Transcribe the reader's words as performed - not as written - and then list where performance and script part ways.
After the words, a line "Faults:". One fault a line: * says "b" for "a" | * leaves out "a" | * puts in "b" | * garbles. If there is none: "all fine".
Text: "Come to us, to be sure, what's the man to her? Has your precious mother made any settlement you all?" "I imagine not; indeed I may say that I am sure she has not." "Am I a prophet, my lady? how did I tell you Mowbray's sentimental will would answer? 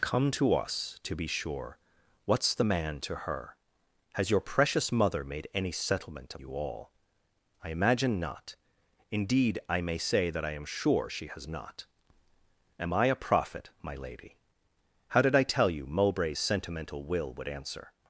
"Come to us, to be sure, what's the man to her? Has your precious mother made any settlement you all?" "I imagine not; indeed I may say that I am sure she has not." "Am I a prophet, my lady? how did I tell you Mowbray's sentimental will would answer?
Faults:
all fine